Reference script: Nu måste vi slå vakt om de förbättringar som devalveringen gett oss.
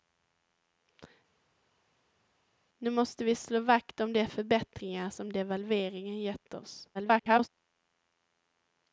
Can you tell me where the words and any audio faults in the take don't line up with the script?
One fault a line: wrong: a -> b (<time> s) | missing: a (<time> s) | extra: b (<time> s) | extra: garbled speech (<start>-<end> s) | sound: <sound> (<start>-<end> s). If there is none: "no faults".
extra: garbled speech (6.9-7.5 s)